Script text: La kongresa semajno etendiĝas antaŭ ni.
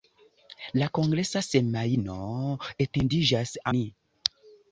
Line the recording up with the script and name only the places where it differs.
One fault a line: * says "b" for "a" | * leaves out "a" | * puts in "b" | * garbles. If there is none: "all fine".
* leaves out "antaŭ"